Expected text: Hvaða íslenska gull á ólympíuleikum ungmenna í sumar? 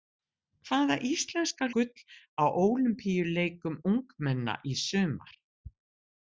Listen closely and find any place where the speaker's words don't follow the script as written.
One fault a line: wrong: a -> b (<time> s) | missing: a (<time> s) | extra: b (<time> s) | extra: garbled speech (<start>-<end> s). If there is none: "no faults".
no faults